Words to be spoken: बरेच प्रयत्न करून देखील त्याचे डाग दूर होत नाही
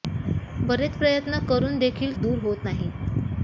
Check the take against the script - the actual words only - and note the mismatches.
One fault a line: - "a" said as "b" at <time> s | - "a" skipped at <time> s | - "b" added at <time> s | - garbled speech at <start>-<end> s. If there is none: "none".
- "त्याचे डाग" skipped at 2.2 s